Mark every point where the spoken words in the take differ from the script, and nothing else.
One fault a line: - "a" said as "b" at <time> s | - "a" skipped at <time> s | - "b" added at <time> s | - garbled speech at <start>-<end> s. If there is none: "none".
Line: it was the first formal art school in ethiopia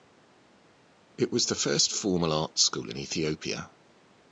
none